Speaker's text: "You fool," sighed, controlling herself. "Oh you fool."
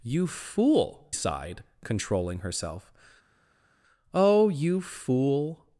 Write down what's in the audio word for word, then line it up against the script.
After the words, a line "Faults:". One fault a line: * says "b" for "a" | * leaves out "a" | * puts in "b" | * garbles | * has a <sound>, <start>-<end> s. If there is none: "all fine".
"You fool," sighed, controlling herself. "Oh you fool."
Faults:
all fine